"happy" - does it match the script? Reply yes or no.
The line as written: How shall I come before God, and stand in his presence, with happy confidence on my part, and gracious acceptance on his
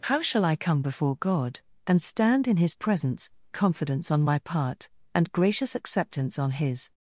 no